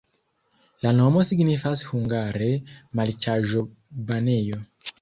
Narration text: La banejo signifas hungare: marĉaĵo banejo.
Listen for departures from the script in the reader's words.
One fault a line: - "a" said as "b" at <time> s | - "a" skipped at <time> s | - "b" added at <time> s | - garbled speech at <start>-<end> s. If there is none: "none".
- "banejo" said as "nomo" at 1.0 s